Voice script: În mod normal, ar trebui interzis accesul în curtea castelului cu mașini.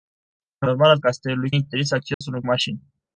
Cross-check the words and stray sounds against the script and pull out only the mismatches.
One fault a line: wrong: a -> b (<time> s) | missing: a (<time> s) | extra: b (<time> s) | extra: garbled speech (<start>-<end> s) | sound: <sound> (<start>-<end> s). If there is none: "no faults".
missing: mod (0.7 s)
wrong: trebui -> castelului (1.0 s)
sound: dropout (2.1-2.2 s)
missing: curtea castelului cu (2.4 s)